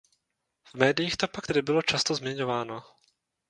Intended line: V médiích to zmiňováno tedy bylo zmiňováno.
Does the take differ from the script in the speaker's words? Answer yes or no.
yes